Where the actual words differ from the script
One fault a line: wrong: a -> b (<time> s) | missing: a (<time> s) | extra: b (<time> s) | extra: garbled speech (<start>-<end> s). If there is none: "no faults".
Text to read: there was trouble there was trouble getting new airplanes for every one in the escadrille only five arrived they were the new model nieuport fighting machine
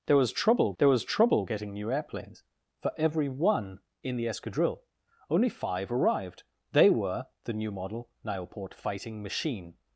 no faults